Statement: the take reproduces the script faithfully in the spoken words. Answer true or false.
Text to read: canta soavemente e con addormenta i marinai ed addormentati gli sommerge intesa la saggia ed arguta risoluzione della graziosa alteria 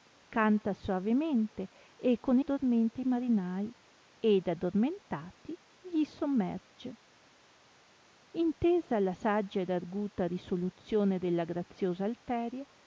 true